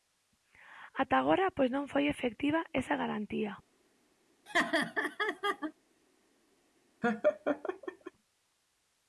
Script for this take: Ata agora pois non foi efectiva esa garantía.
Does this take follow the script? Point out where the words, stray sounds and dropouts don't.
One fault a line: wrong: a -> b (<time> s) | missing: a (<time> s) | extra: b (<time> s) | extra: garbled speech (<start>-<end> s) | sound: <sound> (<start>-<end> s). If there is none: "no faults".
sound: laugh (4.5-5.7 s)
sound: laugh (7.0-8.1 s)